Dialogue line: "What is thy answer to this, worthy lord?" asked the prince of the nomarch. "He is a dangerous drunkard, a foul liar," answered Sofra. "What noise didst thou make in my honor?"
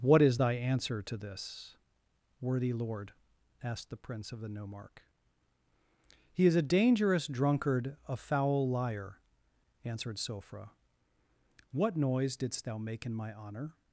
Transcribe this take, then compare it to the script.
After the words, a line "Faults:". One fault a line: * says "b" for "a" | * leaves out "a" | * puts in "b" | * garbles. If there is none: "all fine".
"What is thy answer to this, worthy lord?" asked the prince of the nomarch. "He is a dangerous drunkard, a foul liar," answered Sofra. "What noise didst thou make in my honor?"
Faults:
all fine